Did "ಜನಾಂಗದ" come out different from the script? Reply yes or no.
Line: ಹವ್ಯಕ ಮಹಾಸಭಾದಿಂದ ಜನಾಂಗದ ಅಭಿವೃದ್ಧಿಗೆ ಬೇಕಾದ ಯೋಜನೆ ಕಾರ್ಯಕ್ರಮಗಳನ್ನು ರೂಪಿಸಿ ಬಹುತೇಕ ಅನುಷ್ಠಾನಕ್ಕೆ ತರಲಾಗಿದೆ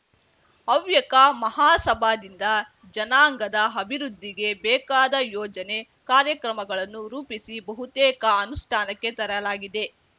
no